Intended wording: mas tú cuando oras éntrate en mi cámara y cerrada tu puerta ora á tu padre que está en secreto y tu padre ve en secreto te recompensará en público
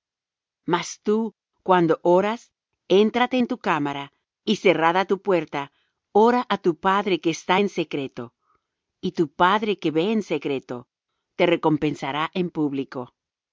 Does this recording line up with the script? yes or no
no